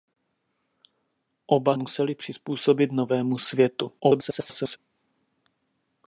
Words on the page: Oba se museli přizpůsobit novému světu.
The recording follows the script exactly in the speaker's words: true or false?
false